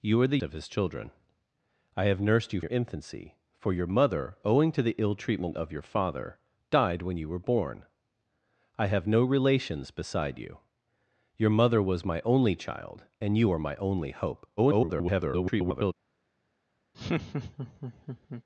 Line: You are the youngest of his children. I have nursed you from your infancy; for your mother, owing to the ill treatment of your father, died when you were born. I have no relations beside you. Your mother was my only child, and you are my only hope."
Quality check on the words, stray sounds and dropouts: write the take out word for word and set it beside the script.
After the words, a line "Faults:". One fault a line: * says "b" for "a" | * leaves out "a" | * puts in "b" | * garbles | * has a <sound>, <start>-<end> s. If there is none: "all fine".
You are the of his children. I have nursed you your infancy; for your mother, owing to the ill treatment of your father, died when you were born. I have no relations beside you. Your mother was my only child, and you are my only hope." [garbled]
Faults:
* leaves out "youngest"
* leaves out "from"
* garbles
* has a laugh, 16.9-18.4 s